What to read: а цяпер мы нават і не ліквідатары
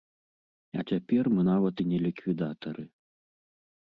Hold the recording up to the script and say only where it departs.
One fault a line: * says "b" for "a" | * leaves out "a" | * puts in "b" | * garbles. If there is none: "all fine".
all fine